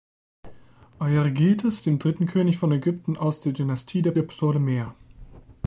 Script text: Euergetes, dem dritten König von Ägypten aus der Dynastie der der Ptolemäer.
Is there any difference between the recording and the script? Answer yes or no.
no